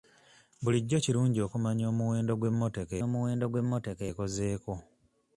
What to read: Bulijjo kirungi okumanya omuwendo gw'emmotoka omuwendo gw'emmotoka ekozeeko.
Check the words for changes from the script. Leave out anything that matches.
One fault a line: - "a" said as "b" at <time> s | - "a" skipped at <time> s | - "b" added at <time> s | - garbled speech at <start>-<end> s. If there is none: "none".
none